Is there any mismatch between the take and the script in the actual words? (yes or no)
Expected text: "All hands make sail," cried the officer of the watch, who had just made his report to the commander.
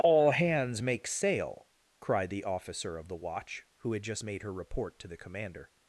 yes